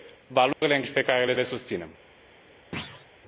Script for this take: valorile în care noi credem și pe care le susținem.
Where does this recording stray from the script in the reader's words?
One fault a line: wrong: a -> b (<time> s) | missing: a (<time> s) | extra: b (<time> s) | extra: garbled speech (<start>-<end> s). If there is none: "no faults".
missing: care noi credem (0.8 s)
extra: le (1.3 s)